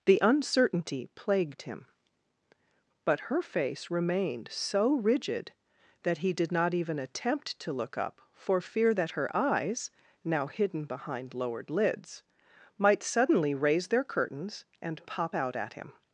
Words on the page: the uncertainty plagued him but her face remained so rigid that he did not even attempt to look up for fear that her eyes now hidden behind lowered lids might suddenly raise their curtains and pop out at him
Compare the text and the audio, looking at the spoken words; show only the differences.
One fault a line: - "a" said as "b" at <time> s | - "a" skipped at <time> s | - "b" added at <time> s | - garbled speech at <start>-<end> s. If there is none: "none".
none